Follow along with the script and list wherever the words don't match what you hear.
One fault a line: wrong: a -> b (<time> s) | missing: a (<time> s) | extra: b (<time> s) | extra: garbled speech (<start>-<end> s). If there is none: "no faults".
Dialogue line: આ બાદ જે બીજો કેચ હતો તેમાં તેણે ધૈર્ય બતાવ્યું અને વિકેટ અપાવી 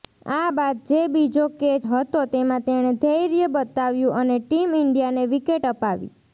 extra: ટીમ ઈન્ડિયાને (4.4 s)